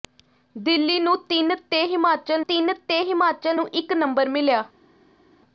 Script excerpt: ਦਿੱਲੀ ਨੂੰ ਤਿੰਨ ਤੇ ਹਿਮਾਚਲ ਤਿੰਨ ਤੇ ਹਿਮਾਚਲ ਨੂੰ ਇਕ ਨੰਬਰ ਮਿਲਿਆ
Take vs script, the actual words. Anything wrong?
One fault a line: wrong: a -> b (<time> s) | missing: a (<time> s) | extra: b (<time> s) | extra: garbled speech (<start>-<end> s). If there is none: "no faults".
no faults